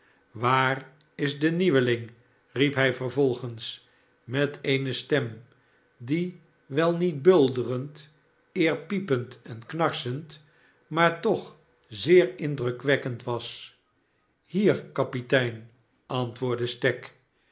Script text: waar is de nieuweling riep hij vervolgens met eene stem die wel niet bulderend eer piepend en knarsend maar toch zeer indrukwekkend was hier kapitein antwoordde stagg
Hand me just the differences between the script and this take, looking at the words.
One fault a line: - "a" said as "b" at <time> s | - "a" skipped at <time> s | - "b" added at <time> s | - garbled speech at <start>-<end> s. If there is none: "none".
none